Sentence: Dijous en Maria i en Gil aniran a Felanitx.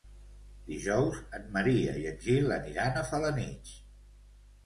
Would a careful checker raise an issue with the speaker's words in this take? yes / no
no